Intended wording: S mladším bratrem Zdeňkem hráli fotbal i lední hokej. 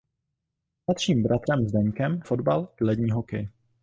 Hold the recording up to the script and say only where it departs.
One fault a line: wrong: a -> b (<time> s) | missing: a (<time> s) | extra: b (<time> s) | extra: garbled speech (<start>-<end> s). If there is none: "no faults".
missing: hráli (2.2 s)